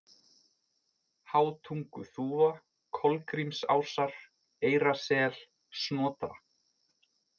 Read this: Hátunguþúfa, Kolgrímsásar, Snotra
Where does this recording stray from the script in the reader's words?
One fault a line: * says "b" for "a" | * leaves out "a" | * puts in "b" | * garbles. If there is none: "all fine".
* puts in "Eyrasel"